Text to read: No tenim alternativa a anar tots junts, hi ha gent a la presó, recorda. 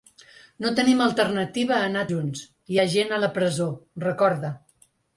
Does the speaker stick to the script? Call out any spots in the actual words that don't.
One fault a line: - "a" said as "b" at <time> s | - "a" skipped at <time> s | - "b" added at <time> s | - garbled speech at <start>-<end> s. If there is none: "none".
- "tots" skipped at 2.0 s